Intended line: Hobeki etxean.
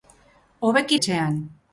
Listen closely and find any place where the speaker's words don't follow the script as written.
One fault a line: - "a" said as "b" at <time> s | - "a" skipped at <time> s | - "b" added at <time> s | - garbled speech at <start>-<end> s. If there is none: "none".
none